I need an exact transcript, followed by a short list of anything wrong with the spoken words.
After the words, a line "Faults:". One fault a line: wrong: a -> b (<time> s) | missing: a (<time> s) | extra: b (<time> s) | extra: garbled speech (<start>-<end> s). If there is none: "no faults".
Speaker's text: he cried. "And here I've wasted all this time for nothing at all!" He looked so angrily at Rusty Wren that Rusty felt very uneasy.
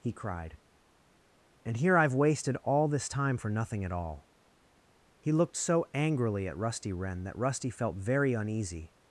he cried. "And here I've wasted all this time for nothing at all!" He looked so angrily at Rusty Wren that Rusty felt very uneasy.
Faults:
no faults